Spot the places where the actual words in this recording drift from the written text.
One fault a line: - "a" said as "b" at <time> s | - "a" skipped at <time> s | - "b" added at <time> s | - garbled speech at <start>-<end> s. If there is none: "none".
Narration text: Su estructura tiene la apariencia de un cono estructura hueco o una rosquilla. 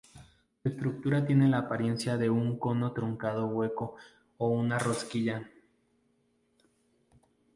- "estructura" said as "truncado" at 2.9 s